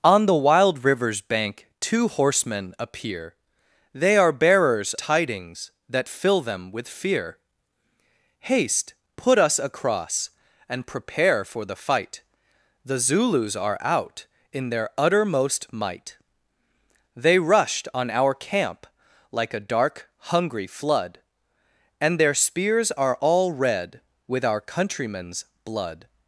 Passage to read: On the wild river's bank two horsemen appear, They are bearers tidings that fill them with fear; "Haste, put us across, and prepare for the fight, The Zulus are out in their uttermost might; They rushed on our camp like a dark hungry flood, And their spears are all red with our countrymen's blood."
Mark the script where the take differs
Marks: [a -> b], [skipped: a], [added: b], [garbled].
On the wild river's bank two horsemen appear, They are bearers tidings that fill them with fear; "Haste, put us across, and prepare for the fight, The Zulus are out in their uttermost might; They rushed on our camp like a dark hungry flood, And their spears are all red with our countrymen's blood."